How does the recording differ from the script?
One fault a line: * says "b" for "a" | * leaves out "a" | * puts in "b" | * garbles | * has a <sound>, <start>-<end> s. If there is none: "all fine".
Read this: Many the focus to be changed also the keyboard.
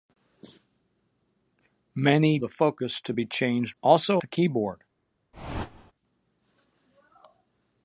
* has a whoosh, 5.3-5.9 s